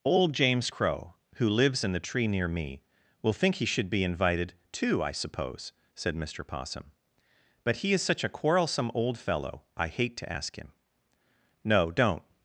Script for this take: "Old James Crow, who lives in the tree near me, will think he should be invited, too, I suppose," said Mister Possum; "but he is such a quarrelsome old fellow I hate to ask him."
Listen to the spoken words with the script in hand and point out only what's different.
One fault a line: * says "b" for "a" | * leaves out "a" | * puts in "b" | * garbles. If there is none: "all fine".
* puts in "No don't"